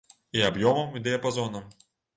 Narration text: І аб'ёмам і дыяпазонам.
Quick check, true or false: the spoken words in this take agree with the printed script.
true